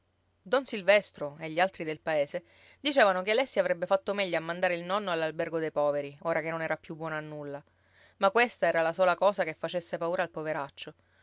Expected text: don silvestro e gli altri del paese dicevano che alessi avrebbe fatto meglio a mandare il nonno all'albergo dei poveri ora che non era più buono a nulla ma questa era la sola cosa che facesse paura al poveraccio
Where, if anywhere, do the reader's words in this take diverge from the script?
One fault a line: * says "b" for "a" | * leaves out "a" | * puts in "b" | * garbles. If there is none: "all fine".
all fine